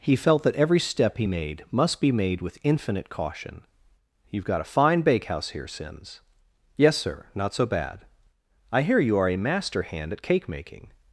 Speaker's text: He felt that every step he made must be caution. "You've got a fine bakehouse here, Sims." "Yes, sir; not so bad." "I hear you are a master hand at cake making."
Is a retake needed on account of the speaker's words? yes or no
yes